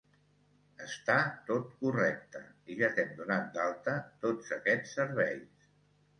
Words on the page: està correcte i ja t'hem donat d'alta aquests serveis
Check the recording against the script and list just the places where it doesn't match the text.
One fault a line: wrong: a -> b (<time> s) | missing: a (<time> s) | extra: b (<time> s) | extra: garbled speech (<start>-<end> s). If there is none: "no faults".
extra: tot (1.5 s)
extra: tots (4.2 s)